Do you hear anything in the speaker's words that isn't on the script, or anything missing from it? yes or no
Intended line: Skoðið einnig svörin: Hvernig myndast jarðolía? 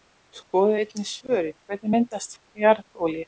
no